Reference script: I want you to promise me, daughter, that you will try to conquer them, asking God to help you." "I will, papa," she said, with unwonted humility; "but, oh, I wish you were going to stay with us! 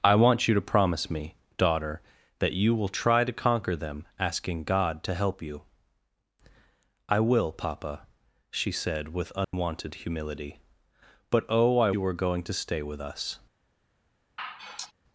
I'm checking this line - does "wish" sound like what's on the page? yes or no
no